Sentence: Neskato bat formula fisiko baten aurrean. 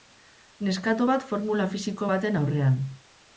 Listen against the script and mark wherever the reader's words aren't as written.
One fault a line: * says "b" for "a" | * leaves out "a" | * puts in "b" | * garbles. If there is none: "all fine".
all fine